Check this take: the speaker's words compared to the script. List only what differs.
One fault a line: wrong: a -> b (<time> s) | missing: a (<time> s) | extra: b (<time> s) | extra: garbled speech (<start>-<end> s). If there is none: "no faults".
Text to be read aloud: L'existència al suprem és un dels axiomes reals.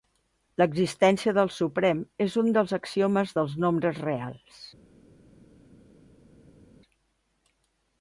wrong: al -> del (1.4 s)
extra: dels nombres (3.4 s)